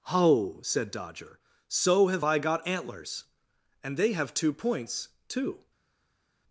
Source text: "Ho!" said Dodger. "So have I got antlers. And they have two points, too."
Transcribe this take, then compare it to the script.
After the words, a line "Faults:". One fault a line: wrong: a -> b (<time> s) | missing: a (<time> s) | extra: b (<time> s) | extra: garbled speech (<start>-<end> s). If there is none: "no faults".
"Ho!" said Dodger. "So have I got antlers. And they have two points, too."
Faults:
no faults